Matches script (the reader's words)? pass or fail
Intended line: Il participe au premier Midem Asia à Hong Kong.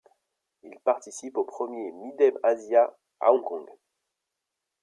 pass